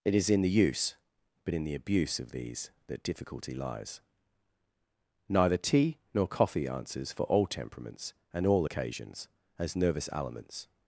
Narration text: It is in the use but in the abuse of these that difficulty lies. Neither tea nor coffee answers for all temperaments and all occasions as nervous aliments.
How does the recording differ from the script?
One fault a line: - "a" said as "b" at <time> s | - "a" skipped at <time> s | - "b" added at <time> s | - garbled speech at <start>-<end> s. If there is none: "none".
none